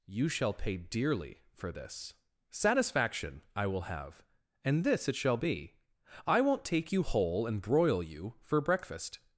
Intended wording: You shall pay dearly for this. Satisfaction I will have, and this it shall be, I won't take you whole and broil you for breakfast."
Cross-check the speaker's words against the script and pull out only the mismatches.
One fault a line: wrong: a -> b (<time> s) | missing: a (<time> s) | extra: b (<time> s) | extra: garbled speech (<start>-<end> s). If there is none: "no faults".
no faults